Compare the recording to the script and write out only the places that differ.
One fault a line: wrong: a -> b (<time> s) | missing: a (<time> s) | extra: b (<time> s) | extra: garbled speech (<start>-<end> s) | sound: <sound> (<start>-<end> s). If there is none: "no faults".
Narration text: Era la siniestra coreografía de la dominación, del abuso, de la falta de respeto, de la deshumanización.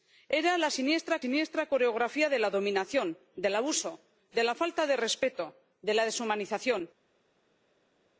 extra: siniestra (1.2 s)